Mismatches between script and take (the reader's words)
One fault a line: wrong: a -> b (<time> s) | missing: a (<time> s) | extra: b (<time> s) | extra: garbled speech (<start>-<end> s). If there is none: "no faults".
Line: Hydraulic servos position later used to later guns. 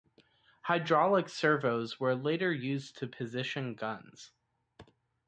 wrong: position -> were (2.0 s)
wrong: later -> position (3.1 s)